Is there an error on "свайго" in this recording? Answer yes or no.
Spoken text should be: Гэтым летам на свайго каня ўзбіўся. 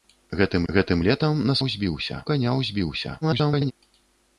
yes